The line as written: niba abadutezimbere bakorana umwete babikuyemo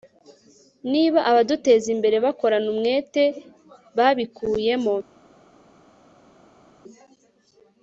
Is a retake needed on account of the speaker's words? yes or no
no